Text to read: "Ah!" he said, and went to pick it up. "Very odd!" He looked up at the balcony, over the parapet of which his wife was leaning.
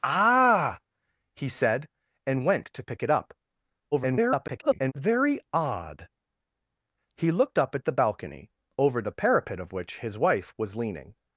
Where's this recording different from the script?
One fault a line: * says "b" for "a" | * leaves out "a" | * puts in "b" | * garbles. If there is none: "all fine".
* garbles